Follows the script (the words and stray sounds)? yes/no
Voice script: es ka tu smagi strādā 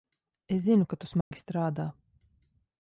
no